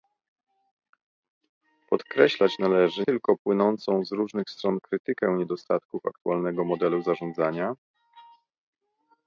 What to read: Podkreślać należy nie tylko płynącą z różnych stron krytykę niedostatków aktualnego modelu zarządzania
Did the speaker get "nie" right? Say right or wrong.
wrong